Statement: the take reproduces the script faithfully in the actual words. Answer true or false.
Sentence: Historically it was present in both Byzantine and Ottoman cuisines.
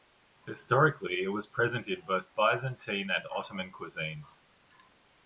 true